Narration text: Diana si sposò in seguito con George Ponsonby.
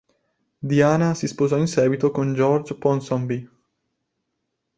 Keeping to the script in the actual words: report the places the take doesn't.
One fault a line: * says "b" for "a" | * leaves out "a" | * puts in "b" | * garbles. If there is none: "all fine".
all fine